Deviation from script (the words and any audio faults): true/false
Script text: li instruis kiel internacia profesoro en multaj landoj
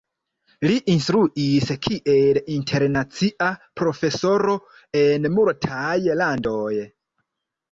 false